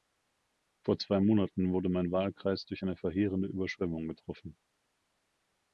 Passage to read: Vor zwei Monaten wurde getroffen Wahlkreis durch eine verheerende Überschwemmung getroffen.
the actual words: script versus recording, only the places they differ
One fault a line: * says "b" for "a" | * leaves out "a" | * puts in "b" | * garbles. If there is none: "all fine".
* says "mein" for "getroffen"